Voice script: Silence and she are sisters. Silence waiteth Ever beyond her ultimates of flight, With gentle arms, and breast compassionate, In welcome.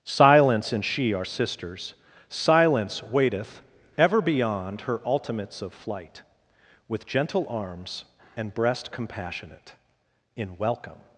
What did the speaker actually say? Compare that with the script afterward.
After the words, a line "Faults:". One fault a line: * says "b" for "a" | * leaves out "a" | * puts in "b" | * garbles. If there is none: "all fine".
Silence and she are sisters. Silence waiteth Ever beyond her ultimates of flight, With gentle arms, and breast compassionate, In welcome.
Faults:
all fine